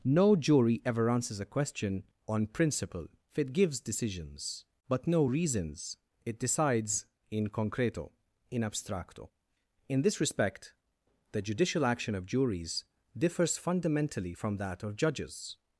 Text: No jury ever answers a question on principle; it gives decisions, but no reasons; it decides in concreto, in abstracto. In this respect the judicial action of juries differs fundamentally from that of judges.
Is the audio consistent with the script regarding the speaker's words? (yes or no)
yes